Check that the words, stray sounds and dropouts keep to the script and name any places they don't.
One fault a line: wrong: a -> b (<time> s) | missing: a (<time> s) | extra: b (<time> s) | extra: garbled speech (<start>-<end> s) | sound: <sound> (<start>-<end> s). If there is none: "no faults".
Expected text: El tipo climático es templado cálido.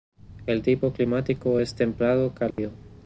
sound: dropout (2.5-2.6 s)